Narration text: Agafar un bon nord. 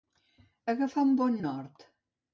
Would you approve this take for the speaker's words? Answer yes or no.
yes